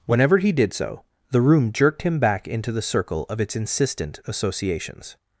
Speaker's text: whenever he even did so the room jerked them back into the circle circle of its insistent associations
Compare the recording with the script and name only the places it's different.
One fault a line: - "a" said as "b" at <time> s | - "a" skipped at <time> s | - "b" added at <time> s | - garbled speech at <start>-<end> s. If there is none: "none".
- "even" skipped at 0.5 s
- "them" said as "him" at 2.0 s
- "circle" skipped at 3.2 s